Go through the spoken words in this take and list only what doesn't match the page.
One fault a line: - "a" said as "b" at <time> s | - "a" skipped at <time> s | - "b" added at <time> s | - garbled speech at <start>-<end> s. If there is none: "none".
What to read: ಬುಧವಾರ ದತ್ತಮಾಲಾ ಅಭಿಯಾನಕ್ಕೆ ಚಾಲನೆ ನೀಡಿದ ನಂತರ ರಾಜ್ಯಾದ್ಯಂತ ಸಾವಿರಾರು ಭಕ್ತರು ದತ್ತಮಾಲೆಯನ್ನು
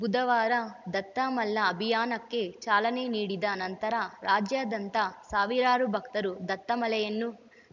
none